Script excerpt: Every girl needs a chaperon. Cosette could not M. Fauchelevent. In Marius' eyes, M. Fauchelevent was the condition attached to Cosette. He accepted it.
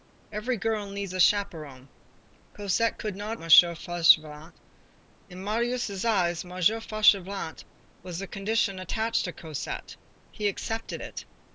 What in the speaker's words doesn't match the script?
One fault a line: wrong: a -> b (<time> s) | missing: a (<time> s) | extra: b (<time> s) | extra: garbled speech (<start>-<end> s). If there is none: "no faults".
no faults